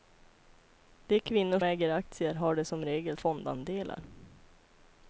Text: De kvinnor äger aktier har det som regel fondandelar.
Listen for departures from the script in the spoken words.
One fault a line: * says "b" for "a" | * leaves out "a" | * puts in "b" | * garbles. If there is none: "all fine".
all fine